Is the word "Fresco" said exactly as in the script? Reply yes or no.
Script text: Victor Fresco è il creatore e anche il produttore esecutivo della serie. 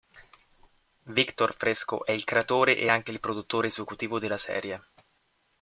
yes